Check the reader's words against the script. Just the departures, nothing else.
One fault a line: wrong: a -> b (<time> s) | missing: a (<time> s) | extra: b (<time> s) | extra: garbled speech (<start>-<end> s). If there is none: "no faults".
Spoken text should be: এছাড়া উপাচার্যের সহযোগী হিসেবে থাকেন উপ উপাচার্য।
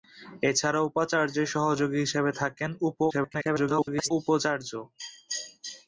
extra: garbled speech (3.1-4.1 s)